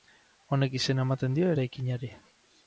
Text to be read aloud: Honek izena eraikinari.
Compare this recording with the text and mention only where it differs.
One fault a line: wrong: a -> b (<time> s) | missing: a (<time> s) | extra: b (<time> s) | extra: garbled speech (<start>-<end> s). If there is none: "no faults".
extra: ematen dio (1.1 s)